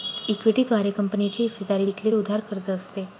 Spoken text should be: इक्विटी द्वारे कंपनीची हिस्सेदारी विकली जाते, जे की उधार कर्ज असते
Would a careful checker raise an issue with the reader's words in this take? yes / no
yes